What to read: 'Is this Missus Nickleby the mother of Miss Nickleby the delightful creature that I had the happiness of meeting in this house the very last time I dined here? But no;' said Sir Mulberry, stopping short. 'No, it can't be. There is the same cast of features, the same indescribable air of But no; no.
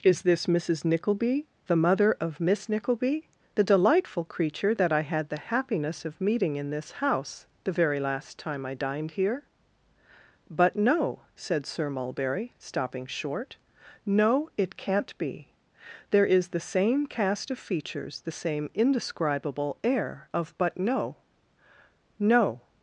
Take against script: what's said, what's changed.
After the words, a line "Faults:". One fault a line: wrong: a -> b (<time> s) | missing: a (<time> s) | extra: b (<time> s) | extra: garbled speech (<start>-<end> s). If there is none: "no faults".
'Is this Missus Nickleby the mother of Miss Nickleby the delightful creature that I had the happiness of meeting in this house the very last time I dined here? But no;' said Sir Mulberry, stopping short. 'No, it can't be. There is the same cast of features, the same indescribable air of But no; no.
Faults:
no faults